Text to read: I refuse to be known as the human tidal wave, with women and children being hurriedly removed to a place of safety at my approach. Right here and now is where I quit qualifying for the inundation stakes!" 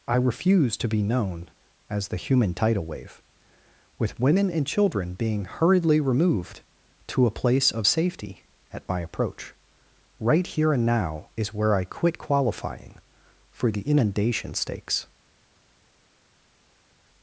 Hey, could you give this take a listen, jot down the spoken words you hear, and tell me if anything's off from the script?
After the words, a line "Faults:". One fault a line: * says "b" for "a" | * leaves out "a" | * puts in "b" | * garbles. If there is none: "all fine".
I refuse to be known as the human tidal wave, with women and children being hurriedly removed to a place of safety at my approach. Right here and now is where I quit qualifying for the inundation stakes!"
Faults:
all fine